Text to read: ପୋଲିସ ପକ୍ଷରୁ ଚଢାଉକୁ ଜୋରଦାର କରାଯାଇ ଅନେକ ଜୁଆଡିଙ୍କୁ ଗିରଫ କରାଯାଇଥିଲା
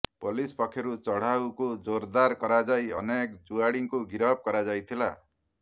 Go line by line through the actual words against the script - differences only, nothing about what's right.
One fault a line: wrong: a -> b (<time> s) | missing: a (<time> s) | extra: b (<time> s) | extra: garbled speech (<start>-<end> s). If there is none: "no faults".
no faults